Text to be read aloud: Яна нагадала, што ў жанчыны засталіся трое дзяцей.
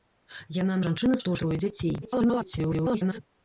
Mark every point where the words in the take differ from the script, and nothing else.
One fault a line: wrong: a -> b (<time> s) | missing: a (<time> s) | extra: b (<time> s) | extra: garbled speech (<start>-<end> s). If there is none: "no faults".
wrong: нагадала -> жанчыны (0.9 s)
missing: жанчыны засталіся (1.4 s)
extra: garbled speech (2.0-3.2 s)